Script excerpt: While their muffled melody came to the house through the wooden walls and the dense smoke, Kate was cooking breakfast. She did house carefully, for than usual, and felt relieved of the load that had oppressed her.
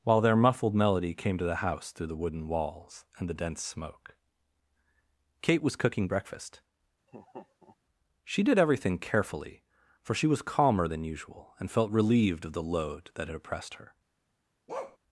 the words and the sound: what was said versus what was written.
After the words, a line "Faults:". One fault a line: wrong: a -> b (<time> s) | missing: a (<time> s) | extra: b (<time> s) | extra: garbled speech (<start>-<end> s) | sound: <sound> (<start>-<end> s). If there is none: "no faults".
While their muffled melody came to the house through the wooden walls and the dense smoke, Kate was cooking breakfast. She did everything carefully, for she was calmer than usual, and felt relieved of the load that had oppressed her.
Faults:
sound: laugh (7.1-7.8 s)
wrong: house -> everything (8.6 s)
extra: she was calmer (10.1 s)
sound: bark (14.7-15.0 s)